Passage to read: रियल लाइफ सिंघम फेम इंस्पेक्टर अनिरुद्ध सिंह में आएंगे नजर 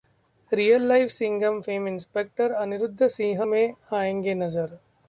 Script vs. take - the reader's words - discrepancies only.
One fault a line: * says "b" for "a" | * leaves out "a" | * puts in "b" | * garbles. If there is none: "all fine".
all fine